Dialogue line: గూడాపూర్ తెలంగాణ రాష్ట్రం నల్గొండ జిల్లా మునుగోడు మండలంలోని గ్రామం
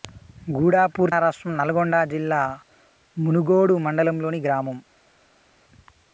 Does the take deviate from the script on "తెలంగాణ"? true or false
true